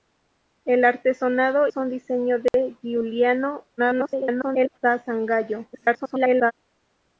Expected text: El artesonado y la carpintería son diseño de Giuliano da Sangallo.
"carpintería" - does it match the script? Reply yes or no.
no